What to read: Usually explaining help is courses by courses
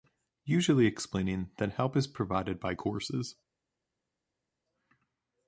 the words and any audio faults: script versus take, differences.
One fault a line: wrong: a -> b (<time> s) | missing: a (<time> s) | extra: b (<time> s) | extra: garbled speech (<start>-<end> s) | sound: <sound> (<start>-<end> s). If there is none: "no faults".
extra: that (1.6 s)
wrong: courses -> provided (2.1 s)